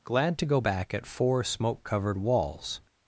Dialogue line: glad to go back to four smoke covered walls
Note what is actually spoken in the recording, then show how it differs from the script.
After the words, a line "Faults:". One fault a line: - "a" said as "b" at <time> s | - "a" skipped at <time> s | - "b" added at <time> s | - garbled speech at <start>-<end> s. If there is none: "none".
glad to go back at four smoke covered walls
Faults:
- "to" said as "at" at 0.9 s